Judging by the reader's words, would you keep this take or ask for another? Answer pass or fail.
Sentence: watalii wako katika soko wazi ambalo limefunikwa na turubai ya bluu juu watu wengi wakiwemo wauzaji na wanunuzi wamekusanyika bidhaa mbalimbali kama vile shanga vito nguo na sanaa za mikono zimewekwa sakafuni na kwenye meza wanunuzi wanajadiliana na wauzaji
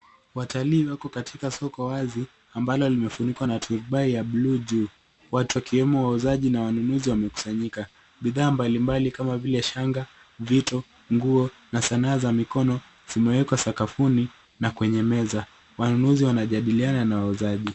fail